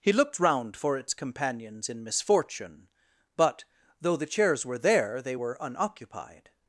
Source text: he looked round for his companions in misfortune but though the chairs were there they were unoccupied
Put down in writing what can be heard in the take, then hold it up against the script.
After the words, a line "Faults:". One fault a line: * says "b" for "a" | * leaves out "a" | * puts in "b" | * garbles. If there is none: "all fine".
he looked round for its companions in misfortune but though the chairs were there they were unoccupied
Faults:
* says "its" for "his"